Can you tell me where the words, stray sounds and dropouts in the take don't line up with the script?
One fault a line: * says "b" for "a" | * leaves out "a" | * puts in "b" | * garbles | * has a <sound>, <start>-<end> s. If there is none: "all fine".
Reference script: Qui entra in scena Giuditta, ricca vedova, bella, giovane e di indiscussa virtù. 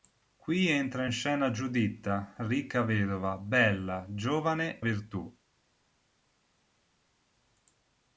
* leaves out "e di indiscussa"